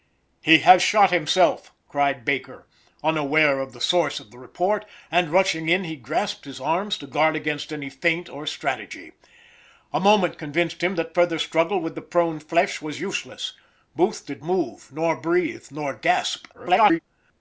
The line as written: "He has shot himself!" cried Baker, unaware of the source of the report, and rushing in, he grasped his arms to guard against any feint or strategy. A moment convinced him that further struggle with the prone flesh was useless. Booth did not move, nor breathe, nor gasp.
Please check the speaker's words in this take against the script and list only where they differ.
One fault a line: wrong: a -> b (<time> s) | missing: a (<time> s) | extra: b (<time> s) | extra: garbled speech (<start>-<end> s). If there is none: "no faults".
missing: not (14.4 s)
extra: garbled speech (16.5-17.0 s)